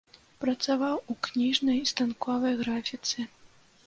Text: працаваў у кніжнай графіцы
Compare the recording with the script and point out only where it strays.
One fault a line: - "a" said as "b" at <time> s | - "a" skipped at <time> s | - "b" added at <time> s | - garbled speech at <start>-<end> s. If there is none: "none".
- "станковай" added at 1.9 s